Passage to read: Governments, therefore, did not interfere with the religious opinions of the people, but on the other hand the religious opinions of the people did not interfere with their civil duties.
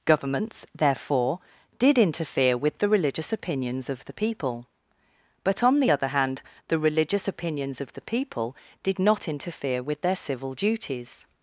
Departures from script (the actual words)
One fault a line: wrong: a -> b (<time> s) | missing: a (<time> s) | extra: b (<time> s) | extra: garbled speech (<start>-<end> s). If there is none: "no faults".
missing: not (2.0 s)